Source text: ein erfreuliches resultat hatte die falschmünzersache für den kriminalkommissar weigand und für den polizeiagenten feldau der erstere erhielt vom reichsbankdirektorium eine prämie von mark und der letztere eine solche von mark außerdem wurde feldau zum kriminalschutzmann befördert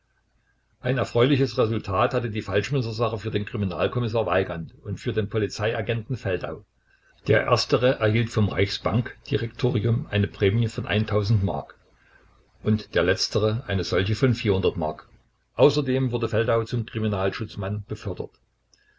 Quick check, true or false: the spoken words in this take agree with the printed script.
true